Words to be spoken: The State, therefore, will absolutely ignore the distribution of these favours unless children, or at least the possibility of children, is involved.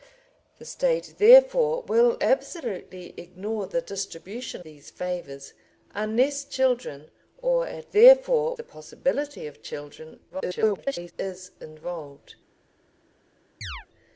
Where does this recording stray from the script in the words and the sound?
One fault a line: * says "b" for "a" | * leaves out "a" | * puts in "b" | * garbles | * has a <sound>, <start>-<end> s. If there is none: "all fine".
* leaves out "of"
* says "therefore" for "least"
* garbles
* has a chirp, 13.6-13.9 s